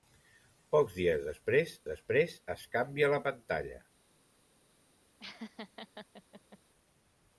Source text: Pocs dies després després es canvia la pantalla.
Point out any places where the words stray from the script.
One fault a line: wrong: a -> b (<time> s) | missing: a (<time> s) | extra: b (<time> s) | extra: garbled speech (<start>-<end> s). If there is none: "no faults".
no faults